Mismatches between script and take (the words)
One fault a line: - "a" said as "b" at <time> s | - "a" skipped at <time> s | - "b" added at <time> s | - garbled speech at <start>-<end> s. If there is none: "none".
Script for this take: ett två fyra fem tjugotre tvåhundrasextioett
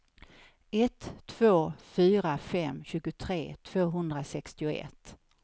none